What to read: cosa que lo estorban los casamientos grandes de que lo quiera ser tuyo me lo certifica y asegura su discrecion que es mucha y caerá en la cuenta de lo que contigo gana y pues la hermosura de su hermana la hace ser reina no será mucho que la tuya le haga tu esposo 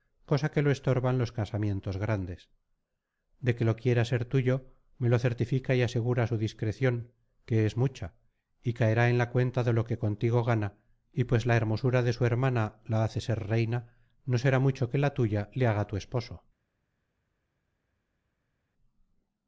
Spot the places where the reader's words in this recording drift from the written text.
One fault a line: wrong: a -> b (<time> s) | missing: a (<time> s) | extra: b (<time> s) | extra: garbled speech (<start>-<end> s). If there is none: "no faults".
no faults